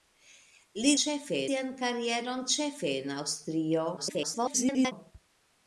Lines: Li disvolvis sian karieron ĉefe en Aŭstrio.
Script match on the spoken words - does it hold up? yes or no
no